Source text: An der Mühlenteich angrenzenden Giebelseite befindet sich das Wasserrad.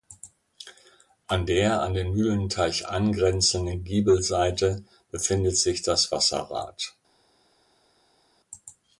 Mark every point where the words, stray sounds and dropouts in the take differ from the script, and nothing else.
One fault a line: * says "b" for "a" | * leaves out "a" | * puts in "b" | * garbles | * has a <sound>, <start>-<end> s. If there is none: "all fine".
* puts in "an den"